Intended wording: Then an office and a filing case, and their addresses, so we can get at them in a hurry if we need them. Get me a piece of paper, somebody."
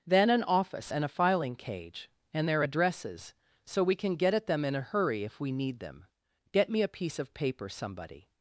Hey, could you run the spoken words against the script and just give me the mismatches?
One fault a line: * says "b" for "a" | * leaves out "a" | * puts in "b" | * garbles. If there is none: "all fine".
* says "cage" for "case"